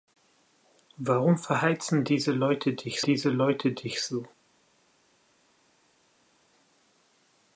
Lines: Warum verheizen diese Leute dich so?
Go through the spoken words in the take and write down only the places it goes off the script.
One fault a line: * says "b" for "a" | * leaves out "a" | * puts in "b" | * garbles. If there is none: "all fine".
* puts in "diese Leute dich"